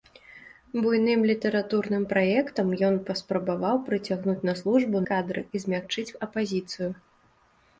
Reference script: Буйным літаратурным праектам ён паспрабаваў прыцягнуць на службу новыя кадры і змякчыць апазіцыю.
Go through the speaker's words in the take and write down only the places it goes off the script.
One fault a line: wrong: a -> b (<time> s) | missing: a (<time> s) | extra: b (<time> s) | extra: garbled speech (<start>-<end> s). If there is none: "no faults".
missing: новыя (5.0 s)